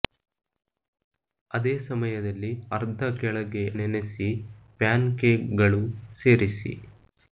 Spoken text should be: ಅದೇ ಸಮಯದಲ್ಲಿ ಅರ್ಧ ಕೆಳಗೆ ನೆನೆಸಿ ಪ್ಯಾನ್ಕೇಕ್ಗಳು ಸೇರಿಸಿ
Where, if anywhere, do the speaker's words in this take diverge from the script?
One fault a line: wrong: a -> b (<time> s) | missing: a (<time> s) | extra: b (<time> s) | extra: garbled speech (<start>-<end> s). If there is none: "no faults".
no faults